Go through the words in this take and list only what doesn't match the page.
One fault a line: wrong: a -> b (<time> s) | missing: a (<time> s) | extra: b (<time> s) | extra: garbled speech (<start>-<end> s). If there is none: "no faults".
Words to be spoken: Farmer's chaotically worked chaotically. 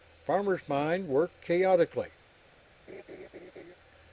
wrong: chaotically -> mind (0.7 s)